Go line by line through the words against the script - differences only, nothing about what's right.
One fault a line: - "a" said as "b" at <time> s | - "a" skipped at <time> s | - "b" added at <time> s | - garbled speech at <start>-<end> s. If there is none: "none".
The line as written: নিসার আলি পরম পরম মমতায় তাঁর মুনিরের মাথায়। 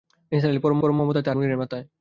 none